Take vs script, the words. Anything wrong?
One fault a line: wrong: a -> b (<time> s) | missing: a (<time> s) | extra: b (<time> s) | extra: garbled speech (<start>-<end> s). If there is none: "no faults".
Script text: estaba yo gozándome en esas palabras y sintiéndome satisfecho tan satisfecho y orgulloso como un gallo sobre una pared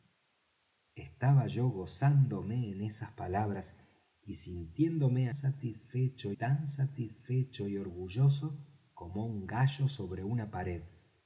no faults